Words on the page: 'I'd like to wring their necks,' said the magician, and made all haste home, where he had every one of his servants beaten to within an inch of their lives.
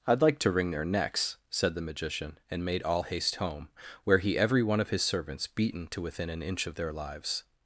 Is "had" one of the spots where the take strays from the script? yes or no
yes